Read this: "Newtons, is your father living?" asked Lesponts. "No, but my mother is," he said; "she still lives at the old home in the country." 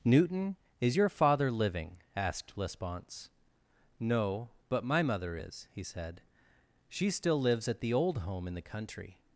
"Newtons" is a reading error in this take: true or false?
true